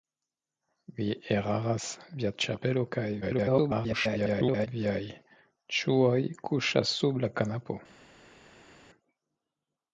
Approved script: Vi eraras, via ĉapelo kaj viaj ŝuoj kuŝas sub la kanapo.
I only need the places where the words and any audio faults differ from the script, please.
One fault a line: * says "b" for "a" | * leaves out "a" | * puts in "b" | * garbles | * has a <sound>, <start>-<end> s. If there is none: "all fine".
* garbles